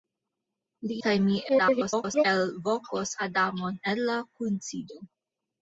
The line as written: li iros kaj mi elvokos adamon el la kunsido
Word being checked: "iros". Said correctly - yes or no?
no